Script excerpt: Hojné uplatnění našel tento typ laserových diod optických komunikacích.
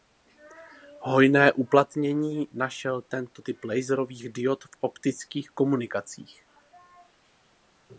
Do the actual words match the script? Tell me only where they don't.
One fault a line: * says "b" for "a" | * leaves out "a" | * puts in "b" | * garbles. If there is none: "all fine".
* puts in "v"